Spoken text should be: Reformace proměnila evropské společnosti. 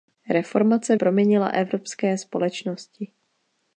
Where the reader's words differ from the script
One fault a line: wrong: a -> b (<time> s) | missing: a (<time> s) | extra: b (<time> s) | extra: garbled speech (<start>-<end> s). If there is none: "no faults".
no faults